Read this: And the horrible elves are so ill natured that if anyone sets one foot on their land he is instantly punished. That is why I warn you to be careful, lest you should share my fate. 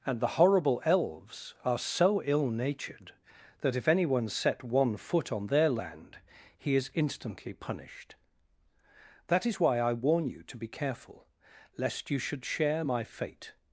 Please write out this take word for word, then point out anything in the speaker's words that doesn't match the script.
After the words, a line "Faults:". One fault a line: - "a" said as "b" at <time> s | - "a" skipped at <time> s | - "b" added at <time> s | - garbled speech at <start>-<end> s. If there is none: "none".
And the horrible elves are so ill natured that if anyone set one foot on their land he is instantly punished. That is why I warn you to be careful, lest you should share my fate.
Faults:
- "sets" said as "set" at 4.3 s